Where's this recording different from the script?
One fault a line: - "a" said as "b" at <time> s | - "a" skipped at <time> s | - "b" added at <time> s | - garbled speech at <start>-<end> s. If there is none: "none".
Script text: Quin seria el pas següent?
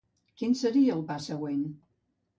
none